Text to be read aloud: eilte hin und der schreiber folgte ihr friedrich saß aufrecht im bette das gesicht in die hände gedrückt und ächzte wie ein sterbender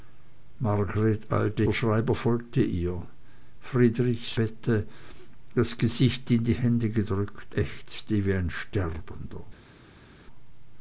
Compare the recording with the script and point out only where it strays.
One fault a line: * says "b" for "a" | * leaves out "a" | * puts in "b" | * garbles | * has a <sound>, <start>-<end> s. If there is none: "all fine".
* leaves out "hin und"
* leaves out "saß aufrecht im"
* leaves out "und"